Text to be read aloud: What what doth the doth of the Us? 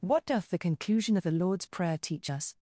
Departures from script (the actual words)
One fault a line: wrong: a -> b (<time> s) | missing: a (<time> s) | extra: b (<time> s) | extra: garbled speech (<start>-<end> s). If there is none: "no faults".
missing: what (0.2 s)
wrong: doth -> conclusion (0.6 s)
extra: Lord's prayer teach (1.3 s)